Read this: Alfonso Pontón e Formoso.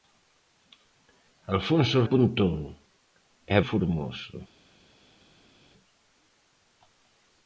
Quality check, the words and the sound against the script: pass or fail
pass